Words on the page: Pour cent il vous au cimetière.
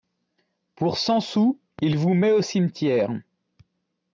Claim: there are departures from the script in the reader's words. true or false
true